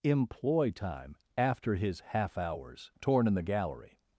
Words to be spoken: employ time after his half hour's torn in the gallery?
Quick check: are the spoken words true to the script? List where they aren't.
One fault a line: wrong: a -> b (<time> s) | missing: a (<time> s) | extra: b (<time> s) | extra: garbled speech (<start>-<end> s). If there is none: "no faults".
no faults